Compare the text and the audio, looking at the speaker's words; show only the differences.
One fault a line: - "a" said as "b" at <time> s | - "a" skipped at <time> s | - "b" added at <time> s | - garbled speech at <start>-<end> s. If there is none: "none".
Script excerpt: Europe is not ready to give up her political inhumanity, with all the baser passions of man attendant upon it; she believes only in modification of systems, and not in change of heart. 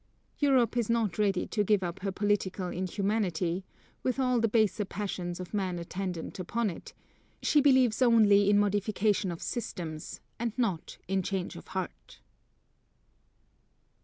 none